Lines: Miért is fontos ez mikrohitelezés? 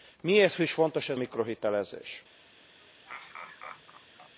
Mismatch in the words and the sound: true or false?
true